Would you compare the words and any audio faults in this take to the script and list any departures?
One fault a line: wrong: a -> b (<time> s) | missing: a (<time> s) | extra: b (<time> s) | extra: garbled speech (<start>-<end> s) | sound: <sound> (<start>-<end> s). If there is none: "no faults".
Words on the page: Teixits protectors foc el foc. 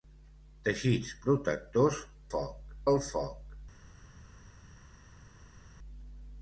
no faults